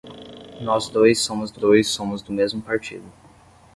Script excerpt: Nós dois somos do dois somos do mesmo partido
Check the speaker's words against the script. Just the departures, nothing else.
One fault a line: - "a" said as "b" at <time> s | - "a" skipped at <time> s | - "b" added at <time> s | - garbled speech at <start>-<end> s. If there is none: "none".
none